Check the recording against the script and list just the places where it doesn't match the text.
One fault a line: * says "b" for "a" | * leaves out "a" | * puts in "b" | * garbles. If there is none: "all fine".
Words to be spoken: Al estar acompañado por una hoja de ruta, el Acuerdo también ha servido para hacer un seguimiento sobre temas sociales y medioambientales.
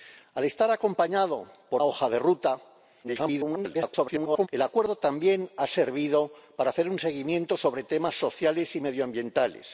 * leaves out "una"
* garbles